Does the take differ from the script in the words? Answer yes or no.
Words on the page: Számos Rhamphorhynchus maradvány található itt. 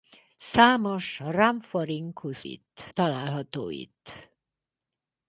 yes